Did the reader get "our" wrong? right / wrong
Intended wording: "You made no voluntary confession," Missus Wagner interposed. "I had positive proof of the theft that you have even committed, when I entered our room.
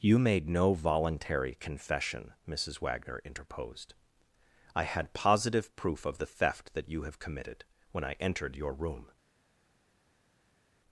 wrong